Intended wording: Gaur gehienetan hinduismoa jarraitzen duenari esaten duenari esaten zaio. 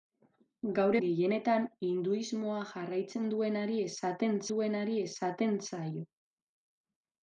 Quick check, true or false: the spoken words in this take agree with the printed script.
true